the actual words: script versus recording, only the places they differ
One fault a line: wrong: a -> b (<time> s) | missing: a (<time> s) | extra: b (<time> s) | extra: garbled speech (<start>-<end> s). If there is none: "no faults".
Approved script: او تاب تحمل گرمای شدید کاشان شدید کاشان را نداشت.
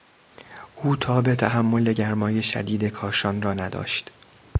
missing: شدید کاشان (3.4 s)